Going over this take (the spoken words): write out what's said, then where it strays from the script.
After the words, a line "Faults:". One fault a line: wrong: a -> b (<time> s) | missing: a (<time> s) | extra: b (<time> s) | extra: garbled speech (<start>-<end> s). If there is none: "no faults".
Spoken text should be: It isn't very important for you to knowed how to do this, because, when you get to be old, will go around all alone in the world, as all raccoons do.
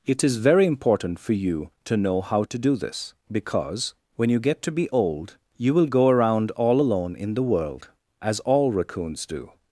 It is very important for you to know how to do this, because, when you get to be old, you will go around all alone in the world, as all raccoons do.
Faults:
wrong: isn't -> is (0.2 s)
wrong: knowed -> know (1.9 s)
extra: you (5.6 s)